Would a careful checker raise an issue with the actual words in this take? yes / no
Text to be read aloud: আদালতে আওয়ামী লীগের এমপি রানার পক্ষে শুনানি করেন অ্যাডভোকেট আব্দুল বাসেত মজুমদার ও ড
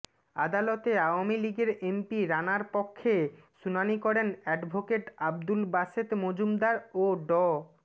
no